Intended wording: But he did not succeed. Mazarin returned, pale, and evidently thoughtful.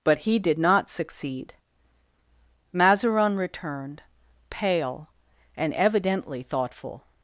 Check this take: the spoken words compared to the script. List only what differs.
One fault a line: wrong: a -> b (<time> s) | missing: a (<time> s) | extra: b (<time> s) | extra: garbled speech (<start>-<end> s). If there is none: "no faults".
no faults